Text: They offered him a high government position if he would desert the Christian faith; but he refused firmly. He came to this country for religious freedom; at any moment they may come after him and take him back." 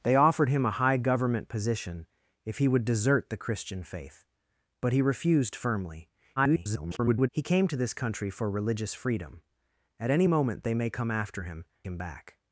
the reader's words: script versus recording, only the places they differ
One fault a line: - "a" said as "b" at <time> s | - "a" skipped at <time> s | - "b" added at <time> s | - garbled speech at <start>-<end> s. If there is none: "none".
- garbled speech at 6.4-7.3 s
- "and take" skipped at 11.6 s